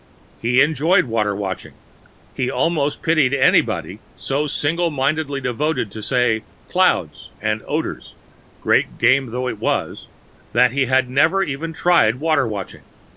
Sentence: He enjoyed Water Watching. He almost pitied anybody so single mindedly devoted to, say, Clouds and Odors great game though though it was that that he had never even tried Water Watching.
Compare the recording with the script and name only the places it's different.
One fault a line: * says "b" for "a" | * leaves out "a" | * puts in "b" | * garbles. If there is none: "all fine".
* leaves out "though"
* leaves out "that"